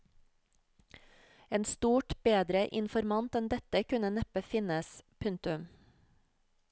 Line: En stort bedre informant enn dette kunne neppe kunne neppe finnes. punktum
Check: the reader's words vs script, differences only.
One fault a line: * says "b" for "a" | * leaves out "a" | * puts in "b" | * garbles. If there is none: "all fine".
* leaves out "kunne neppe"